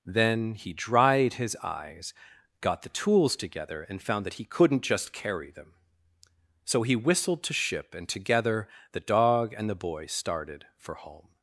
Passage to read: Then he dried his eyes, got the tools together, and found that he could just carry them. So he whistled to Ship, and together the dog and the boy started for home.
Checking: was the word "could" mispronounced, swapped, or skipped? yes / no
yes